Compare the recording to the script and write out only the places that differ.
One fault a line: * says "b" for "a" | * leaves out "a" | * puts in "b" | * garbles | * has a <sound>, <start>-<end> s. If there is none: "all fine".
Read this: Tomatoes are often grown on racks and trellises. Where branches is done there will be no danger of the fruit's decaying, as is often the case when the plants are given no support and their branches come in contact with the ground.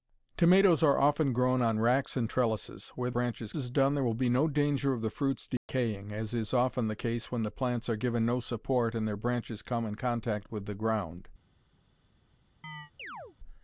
* has a dropout, 5.6-5.7 s
* has a chirp, 12.6-13.4 s